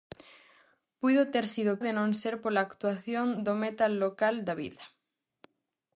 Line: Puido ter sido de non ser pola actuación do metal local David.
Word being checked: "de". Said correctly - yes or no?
yes